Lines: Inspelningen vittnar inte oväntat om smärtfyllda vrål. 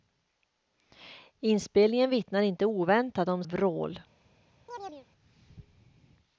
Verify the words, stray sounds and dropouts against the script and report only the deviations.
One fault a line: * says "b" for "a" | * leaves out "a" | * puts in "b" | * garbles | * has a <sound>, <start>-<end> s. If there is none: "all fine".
* leaves out "smärtfyllda"
* has a chirp, 4.7-5.1 s